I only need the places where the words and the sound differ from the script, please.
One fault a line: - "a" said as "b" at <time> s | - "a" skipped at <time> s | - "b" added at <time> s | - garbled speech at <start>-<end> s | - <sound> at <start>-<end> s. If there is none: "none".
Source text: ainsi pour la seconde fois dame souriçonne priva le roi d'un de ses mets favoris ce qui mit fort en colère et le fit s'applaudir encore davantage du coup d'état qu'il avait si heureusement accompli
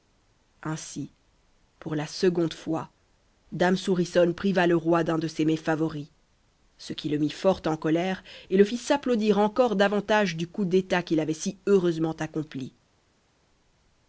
- "le" added at 7.1 s